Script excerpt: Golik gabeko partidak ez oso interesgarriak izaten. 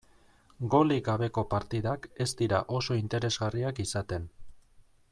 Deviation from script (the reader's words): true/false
true